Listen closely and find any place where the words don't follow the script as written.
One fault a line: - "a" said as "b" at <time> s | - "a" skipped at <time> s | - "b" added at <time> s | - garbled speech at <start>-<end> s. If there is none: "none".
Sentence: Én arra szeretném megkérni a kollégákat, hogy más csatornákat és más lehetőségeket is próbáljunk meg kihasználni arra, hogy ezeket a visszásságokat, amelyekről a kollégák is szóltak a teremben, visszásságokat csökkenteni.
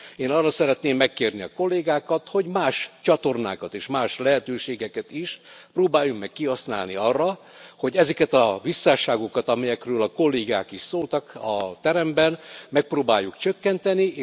- "visszásságokat" said as "megpróbáljuk" at 12.7 s